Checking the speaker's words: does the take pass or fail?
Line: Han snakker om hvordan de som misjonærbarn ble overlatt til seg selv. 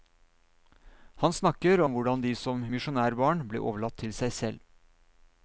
pass